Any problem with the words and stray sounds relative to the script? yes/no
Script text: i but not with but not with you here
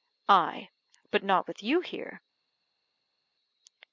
yes